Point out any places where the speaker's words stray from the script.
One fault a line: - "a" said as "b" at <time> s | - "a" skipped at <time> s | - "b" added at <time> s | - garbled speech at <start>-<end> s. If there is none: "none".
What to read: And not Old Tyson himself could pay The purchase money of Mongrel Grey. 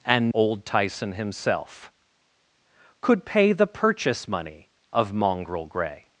- "not" skipped at 0.3 s